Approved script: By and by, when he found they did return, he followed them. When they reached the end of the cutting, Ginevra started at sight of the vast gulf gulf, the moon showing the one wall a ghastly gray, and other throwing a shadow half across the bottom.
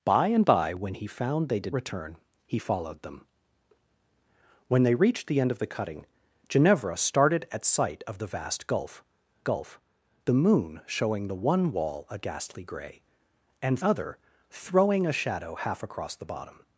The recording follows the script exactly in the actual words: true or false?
true